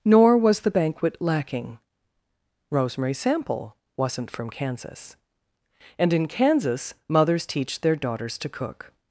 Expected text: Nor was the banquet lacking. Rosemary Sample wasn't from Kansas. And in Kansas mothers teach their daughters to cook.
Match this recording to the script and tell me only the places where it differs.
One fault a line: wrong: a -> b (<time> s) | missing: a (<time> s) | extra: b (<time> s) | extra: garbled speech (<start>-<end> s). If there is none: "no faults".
no faults